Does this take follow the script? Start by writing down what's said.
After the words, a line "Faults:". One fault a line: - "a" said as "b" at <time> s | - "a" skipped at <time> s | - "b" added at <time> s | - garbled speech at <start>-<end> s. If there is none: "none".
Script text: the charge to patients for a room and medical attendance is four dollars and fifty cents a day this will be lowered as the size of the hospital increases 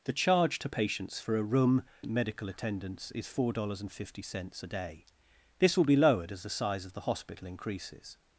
the charge to patients for a room and medical attendance is four dollars and fifty cents a day this will be lowered as the size of the hospital increases
Faults:
none